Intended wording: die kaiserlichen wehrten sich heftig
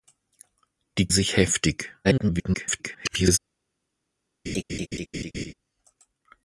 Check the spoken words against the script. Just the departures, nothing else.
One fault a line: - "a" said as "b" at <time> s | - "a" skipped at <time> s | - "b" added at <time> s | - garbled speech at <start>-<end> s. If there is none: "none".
- "kaiserlichen wehrten" skipped at 1.1 s
- garbled speech at 2.0-3.4 s